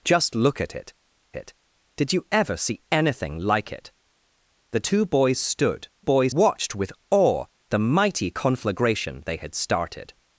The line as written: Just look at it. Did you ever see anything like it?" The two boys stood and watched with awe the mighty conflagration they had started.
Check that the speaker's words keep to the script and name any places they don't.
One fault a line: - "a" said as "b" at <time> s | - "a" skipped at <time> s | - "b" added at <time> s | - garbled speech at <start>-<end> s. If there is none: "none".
- "it" added at 1.4 s
- "and" said as "boys" at 6.0 s